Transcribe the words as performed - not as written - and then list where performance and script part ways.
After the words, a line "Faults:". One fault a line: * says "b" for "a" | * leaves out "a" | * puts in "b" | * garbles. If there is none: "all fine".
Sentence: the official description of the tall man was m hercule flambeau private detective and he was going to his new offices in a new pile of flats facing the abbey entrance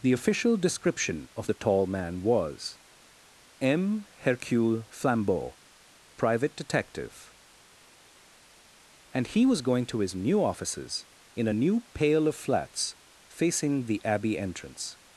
the official description of the tall man was m hercule flambeau private detective and he was going to his new offices in a new pale of flats facing the abbey entrance
Faults:
* says "pale" for "pile"